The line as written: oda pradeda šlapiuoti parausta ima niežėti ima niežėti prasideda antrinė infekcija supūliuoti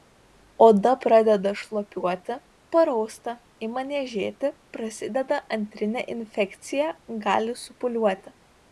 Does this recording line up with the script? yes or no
no